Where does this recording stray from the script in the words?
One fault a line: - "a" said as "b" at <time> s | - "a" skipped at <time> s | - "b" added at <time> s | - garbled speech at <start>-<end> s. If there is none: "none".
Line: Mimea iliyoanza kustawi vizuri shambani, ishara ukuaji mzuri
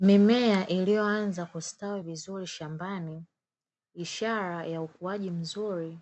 - "ya" added at 4.6 s